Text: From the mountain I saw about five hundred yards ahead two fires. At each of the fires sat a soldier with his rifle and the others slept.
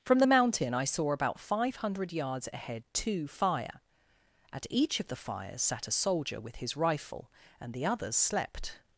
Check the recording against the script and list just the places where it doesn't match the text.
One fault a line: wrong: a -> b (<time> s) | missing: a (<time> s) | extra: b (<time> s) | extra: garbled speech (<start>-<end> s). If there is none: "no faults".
wrong: fires -> fire (3.3 s)